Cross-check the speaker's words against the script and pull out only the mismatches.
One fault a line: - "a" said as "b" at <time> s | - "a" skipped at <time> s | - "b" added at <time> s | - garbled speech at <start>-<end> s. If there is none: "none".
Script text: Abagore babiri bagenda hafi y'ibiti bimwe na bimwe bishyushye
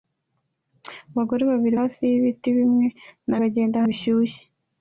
- "bagenda" skipped at 1.8 s
- "bimwe" said as "bagenda" at 3.4 s